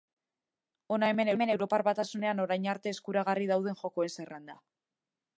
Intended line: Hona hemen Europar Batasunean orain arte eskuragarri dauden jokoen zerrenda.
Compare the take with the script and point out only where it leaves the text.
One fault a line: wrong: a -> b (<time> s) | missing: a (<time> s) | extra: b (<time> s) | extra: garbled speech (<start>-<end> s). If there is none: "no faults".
extra: hemen (1.4 s)